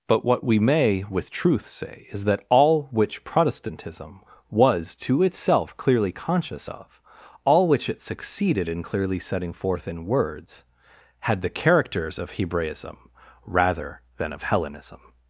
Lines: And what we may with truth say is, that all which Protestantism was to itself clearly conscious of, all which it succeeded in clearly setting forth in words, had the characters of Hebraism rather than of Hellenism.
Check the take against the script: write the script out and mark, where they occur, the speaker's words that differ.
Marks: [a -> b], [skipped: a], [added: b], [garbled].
[And -> But] what we may with truth say is, that all which Protestantism was to itself clearly conscious of, all which it succeeded in clearly setting forth in words, had the characters of Hebraism rather than of Hellenism.